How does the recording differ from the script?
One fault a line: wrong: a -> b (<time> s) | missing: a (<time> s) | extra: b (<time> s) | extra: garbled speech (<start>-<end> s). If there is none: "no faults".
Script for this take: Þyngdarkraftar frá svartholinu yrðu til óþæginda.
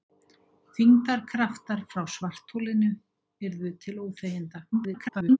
extra: garbled speech (4.7-5.4 s)